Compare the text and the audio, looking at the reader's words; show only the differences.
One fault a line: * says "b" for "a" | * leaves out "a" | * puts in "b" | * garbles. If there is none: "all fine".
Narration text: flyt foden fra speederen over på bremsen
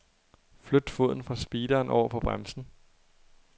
all fine